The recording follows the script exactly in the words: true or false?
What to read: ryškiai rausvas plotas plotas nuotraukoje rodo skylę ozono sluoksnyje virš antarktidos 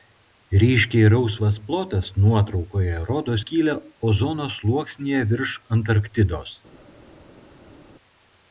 false